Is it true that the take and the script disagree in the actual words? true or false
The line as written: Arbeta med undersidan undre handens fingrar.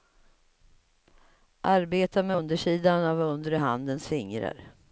true